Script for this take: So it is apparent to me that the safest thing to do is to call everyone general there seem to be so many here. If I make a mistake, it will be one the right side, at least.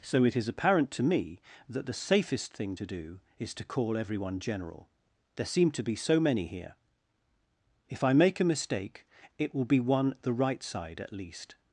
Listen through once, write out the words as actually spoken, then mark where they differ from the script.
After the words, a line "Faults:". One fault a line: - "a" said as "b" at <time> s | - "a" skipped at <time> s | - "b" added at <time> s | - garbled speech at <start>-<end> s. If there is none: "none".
So it is apparent to me that the safest thing to do is to call everyone general there seem to be so many here. If I make a mistake, it will be one the right side, at least.
Faults:
none